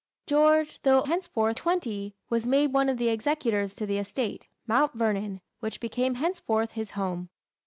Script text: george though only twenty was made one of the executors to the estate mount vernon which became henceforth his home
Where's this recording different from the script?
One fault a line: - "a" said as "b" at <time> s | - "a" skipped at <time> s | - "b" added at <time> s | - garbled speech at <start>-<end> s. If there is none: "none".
- "only" said as "henceforth" at 1.0 s